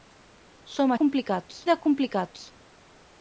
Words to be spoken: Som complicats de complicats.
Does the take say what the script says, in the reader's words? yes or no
yes